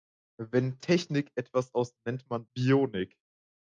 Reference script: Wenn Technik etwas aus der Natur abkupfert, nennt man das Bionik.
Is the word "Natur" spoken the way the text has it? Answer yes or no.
no